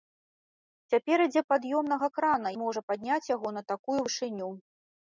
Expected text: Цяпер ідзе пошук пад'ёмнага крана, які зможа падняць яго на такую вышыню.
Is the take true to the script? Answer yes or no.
no